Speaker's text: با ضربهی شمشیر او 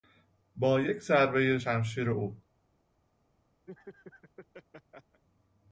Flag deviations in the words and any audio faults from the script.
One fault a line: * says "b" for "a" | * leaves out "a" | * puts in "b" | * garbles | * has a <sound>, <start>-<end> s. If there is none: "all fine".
* puts in "یک"
* has a laugh, 3.7-5.2 s